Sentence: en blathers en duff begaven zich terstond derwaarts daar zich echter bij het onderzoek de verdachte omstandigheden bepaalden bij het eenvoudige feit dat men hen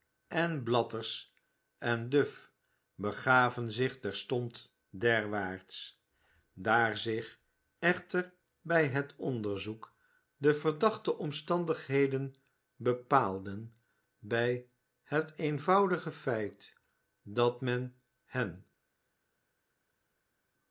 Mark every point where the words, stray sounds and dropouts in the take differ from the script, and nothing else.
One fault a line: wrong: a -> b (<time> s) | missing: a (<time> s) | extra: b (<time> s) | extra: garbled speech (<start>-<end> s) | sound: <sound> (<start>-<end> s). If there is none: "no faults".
no faults